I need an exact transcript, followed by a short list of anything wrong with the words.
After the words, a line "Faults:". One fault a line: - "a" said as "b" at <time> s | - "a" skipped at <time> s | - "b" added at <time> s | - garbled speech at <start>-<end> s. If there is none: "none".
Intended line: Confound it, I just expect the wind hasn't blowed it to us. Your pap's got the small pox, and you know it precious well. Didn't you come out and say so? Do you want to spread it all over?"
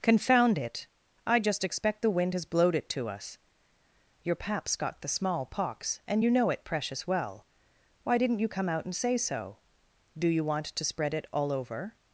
Confound it, I just expect the wind has blowed it to us. Your pap's got the small pox, and you know it precious well. Why didn't you come out and say so? Do you want to spread it all over?"
Faults:
- "hasn't" said as "has" at 2.3 s
- "Why" added at 8.0 s